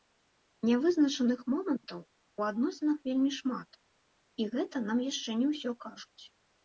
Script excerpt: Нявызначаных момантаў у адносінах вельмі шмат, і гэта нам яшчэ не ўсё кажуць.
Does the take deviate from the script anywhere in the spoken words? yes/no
no